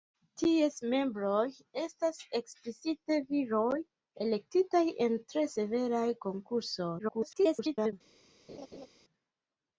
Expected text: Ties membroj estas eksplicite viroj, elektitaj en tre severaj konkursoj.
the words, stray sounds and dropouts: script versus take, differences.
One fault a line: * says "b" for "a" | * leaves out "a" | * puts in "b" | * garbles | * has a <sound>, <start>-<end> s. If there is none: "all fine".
* garbles
* has a laugh, 8.5-8.9 s